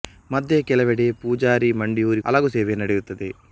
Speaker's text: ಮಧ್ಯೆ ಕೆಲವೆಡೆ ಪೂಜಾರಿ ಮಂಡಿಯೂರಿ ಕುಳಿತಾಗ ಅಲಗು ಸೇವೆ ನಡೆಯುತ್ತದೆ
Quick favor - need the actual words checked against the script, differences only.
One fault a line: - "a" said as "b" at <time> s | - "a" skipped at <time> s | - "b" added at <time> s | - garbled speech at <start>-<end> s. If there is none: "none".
- "ಕುಳಿತಾಗ" skipped at 2.2 s